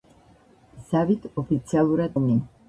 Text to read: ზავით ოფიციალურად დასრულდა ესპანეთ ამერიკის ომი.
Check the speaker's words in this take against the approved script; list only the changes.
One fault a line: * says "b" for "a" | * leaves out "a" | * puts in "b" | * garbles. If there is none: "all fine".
* leaves out "დასრულდა ესპანეთ ამერიკის"